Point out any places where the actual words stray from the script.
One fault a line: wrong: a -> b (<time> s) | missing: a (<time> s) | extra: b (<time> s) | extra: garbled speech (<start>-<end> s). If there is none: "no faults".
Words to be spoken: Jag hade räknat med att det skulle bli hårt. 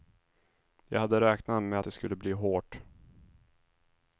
no faults